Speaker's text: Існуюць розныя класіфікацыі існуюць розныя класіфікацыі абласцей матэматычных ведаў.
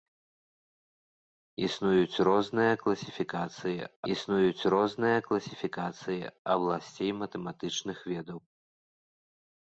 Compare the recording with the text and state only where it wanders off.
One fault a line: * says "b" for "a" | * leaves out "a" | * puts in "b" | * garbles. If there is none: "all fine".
all fine